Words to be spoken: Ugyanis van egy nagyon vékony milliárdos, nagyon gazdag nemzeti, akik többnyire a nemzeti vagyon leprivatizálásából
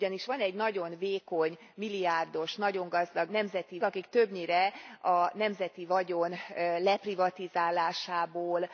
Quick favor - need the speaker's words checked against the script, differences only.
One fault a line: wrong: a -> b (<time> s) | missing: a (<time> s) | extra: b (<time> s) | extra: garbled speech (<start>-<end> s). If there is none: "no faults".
no faults